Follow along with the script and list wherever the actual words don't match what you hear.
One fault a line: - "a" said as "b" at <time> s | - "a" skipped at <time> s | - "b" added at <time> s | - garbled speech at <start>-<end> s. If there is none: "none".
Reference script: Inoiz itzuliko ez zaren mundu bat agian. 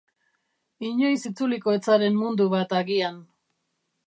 none